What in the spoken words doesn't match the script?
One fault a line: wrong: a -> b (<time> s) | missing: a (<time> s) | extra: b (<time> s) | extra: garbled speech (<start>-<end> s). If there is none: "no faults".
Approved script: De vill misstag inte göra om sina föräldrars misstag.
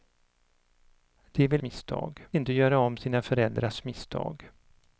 no faults